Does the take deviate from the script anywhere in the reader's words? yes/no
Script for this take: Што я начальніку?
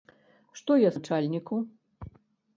no